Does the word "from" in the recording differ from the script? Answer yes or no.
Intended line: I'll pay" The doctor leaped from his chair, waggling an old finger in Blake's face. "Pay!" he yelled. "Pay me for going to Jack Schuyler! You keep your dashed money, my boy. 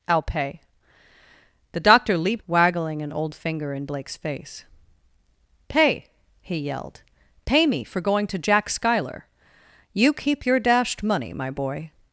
yes